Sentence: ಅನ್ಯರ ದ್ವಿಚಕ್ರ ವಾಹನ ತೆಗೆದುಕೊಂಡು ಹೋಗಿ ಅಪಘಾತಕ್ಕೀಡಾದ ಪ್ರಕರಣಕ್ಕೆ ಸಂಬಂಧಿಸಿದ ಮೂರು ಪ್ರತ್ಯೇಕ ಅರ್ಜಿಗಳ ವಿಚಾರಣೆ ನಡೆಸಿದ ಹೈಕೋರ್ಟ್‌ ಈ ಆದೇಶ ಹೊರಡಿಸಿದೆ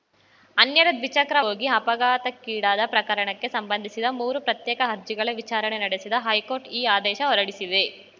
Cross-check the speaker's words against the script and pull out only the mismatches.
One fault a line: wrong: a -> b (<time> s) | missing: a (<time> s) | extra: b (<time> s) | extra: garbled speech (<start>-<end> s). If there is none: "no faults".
missing: ವಾಹನ ತೆಗೆದುಕೊಂಡು (1.4 s)